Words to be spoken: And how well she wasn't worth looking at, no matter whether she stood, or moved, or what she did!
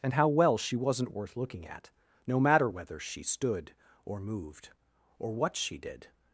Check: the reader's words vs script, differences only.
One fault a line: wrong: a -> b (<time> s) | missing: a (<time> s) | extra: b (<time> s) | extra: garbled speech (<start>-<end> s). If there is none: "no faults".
no faults